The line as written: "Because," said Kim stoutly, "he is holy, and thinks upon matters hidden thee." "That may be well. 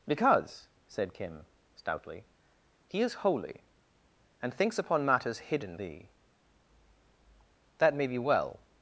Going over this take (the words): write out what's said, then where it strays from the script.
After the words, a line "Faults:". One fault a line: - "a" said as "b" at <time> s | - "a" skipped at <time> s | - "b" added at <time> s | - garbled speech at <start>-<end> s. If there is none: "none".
"Because," said Kim stoutly, "he is holy, and thinks upon matters hidden thee." "That may be well.
Faults:
none